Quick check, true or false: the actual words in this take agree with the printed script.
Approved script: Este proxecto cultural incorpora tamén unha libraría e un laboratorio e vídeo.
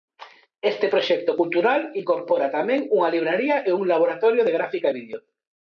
false